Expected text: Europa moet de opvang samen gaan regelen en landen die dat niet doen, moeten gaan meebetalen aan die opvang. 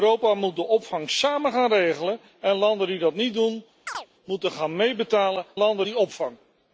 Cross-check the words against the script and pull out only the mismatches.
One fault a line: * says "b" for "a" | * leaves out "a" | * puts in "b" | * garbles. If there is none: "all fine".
* says "landen" for "aan"